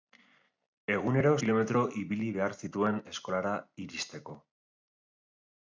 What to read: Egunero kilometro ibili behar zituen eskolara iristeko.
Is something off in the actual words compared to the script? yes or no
no